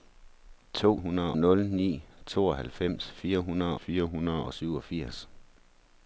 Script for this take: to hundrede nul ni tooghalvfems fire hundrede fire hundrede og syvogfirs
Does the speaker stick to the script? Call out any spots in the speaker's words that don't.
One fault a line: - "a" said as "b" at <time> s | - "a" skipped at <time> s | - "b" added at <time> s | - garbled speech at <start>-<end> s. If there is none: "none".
none